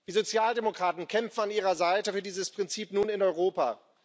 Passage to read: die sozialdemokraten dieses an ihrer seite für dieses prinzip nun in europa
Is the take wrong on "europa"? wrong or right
right